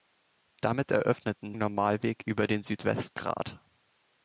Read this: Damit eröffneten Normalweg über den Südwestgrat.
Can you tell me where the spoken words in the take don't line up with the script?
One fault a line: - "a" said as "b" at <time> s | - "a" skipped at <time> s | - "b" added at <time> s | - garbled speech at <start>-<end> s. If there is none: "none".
none